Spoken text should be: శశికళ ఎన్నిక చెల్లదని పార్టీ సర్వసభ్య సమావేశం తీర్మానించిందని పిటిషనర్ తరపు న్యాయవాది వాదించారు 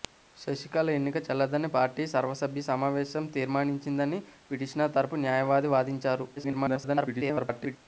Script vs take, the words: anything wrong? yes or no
yes